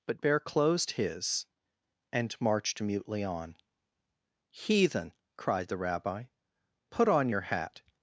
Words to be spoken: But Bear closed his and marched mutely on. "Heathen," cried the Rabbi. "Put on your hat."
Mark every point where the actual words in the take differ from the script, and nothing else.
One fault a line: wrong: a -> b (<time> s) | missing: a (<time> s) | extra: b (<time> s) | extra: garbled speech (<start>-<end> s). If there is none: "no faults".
no faults